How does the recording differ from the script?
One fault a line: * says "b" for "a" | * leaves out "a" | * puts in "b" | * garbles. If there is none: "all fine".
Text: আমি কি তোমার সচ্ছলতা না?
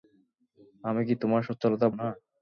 all fine